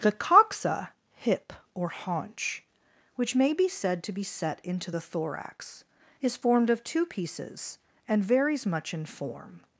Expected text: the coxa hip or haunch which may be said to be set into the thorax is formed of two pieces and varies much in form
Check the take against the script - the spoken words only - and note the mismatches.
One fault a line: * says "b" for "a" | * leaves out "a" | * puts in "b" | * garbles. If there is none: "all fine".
all fine